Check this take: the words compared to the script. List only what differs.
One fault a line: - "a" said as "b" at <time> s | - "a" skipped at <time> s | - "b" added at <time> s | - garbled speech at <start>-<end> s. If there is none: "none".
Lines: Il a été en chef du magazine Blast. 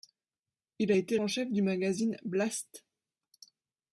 none